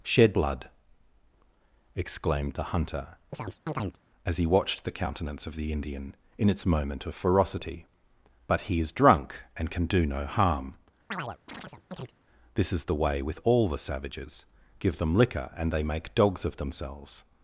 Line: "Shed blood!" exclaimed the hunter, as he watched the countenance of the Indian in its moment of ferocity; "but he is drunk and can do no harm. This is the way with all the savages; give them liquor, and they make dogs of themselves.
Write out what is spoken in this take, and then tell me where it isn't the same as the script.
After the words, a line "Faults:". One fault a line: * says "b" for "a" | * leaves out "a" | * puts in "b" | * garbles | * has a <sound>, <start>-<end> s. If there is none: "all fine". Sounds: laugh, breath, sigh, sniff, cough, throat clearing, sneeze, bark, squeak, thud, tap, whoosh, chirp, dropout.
"Shed blood!" exclaimed the hunter, as he watched the countenance of the Indian in its moment of ferocity; "but he is drunk and can do no harm. This is the way with all the savages; give them liquor, and they make dogs of themselves.
Faults:
* has a chirp, 3.3-4.0 s
* has a chirp, 11.1-12.1 s